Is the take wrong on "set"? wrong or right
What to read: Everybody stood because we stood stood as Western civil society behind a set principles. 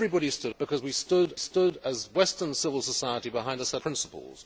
right